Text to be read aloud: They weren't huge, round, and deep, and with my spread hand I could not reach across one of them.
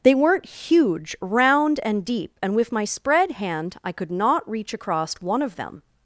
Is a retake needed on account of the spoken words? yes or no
no